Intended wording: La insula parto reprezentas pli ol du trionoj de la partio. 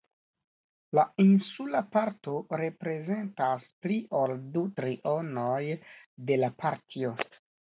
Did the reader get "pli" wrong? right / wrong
right